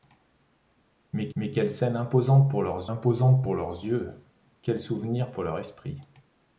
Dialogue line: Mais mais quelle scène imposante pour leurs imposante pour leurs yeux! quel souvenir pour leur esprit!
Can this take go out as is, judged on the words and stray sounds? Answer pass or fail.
pass